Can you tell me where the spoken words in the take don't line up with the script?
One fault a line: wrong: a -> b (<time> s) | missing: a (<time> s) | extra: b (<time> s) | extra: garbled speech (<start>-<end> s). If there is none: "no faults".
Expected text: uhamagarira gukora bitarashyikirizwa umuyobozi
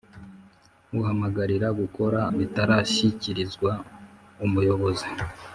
no faults